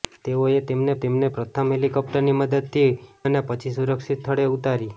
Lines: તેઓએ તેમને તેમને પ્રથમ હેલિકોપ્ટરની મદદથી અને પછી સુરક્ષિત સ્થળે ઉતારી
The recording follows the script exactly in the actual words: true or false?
true